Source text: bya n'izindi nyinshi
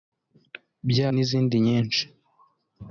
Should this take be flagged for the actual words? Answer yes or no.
no